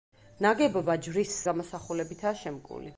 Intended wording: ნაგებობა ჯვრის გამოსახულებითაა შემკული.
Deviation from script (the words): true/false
false